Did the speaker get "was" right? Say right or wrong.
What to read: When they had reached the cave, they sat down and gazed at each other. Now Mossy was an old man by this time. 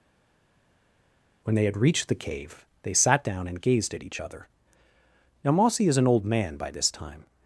wrong